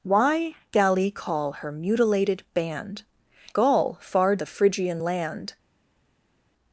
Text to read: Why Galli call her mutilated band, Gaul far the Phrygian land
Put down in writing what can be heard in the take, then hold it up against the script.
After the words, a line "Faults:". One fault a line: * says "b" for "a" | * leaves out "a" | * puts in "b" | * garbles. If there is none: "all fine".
Why Galli call her mutilated band, Gaul far the Phrygian land
Faults:
all fine